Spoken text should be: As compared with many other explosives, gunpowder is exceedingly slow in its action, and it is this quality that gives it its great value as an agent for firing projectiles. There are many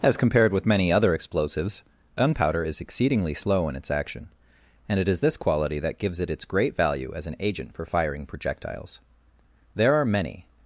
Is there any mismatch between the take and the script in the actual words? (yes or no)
no